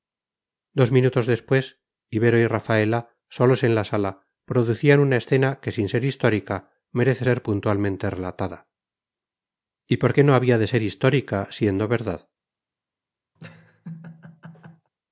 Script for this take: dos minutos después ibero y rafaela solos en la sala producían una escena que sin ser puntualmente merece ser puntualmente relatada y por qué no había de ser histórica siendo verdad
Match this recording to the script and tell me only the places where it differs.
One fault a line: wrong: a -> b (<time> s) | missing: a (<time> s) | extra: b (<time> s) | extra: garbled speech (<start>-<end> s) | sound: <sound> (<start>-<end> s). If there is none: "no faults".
wrong: puntualmente -> histórica (6.0 s)
sound: laugh (13.4-14.9 s)